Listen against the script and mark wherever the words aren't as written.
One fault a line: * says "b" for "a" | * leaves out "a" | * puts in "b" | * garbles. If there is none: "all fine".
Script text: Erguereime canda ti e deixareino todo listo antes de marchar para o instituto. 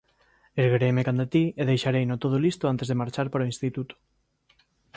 all fine